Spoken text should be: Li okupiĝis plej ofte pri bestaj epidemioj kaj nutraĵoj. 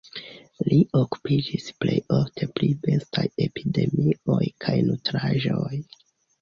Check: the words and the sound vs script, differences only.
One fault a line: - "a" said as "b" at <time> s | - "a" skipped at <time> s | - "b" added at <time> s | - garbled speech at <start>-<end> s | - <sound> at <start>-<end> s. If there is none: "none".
none